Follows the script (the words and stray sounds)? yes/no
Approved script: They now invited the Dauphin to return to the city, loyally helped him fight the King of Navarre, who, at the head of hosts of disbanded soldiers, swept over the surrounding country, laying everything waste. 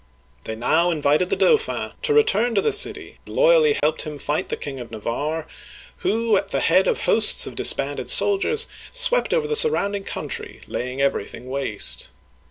no